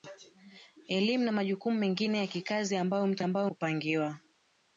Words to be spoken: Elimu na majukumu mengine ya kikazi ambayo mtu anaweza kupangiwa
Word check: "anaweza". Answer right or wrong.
wrong